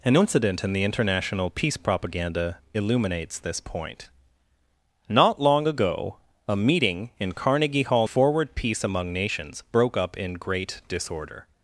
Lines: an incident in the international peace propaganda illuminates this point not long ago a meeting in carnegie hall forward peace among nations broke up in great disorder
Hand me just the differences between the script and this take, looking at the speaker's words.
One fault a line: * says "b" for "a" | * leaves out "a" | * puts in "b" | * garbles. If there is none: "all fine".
all fine